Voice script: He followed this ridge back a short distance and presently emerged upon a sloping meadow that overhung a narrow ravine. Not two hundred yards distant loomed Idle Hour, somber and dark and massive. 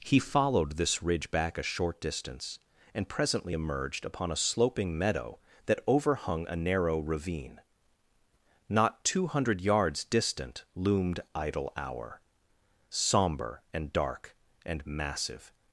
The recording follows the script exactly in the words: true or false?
true